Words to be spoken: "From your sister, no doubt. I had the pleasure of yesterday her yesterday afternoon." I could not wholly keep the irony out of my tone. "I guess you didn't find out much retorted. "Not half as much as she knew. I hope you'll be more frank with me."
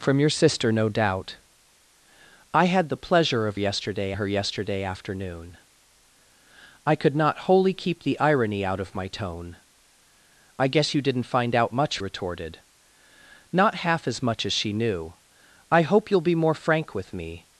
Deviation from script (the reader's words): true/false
false